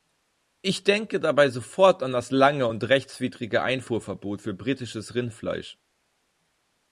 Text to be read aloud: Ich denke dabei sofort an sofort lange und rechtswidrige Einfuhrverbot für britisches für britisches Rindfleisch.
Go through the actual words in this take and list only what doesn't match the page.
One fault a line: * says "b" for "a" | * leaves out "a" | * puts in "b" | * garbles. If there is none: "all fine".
* says "das" for "sofort"
* leaves out "für britisches"